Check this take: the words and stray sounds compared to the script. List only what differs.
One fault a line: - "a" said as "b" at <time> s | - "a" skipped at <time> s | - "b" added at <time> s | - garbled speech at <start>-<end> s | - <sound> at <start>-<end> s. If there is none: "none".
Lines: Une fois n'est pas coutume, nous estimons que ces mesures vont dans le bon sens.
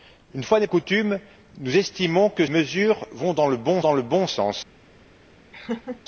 - "pas" skipped at 0.7 s
- "ces" skipped at 2.5 s
- "dans le bon" added at 3.8 s
- laugh at 5.5-6.0 s